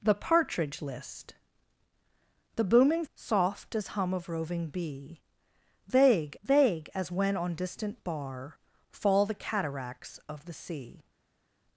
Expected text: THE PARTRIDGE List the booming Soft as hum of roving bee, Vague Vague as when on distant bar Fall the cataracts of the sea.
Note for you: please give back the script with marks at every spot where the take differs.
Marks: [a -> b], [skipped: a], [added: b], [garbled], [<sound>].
THE PARTRIDGE List the booming Soft as hum of roving bee, Vague Vague as when on distant bar Fall the cataracts of the sea.